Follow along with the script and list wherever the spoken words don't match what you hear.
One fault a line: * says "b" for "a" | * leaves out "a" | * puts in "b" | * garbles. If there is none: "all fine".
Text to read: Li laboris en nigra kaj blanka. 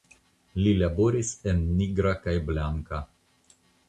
all fine